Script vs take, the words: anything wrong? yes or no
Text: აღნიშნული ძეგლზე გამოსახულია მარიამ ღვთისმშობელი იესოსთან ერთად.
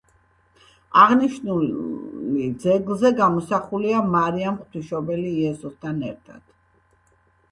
no